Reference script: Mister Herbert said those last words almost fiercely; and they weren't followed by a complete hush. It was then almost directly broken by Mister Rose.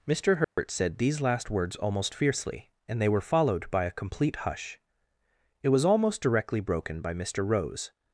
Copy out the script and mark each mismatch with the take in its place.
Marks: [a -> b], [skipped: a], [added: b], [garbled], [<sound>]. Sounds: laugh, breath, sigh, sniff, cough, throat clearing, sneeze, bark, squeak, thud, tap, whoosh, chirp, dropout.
Mister Herbert [dropout] said [those -> these] last words almost fiercely; and they [weren't -> were] followed by a complete hush. It was [skipped: then] almost directly broken by Mister Rose.